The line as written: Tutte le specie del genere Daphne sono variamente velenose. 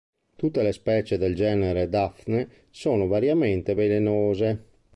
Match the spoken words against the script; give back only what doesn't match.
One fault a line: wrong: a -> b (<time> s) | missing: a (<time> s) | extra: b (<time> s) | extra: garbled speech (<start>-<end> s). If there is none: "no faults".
no faults